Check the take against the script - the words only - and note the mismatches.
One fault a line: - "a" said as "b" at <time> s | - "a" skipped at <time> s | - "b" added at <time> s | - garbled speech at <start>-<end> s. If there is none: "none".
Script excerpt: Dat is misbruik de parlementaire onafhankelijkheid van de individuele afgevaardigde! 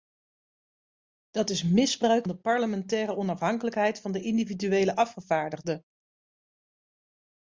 none